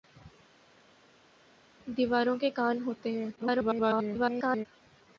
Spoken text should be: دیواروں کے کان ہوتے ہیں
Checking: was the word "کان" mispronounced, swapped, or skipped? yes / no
no